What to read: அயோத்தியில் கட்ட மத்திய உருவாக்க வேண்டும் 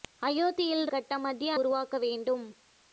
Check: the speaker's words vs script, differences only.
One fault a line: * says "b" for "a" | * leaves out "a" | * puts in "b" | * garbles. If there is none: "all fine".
all fine